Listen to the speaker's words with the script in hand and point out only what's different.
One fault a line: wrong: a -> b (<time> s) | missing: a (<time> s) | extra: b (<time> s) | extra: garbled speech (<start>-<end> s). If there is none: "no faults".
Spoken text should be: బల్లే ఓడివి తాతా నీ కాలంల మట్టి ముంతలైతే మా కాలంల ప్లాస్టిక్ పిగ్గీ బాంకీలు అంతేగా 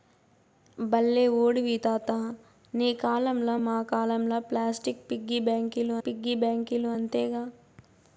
missing: మట్టి ముంతలైతే (3.5 s)
extra: పిగ్గీ బాంకీలు (6.1 s)